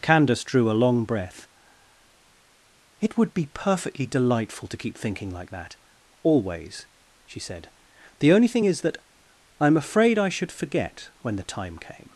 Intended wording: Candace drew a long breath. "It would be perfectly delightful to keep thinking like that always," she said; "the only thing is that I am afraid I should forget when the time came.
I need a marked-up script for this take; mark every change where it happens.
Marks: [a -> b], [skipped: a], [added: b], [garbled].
Candace drew a long breath. "It would be perfectly delightful to keep thinking like that always," she said; "the only thing is that I am afraid I should forget when the time came.